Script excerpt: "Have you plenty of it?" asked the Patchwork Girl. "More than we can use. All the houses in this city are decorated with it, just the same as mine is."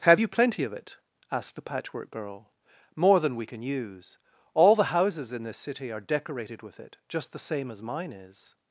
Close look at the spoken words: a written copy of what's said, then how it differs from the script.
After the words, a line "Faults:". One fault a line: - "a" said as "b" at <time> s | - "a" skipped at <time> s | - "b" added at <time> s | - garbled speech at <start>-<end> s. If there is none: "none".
"Have you plenty of it?" asked the Patchwork Girl. "More than we can use. All the houses in this city are decorated with it, just the same as mine is."
Faults:
none